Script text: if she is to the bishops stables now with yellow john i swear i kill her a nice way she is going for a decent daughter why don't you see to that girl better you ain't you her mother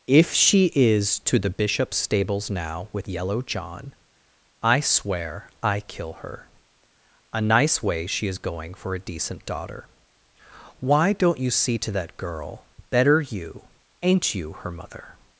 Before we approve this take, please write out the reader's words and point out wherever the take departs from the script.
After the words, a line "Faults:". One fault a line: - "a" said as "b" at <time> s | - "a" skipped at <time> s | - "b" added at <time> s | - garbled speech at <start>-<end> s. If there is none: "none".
if she is to the bishops stables now with yellow john i swear i kill her a nice way she is going for a decent daughter why don't you see to that girl better you ain't you her mother
Faults:
none